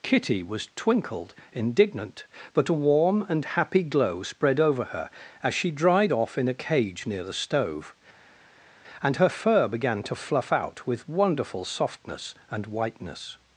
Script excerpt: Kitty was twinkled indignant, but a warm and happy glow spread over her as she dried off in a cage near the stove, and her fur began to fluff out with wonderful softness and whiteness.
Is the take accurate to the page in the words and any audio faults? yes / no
yes